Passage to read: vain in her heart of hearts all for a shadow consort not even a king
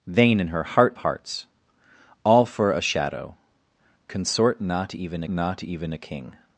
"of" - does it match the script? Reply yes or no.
no